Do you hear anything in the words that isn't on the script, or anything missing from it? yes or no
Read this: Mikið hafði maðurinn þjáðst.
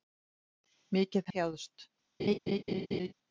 yes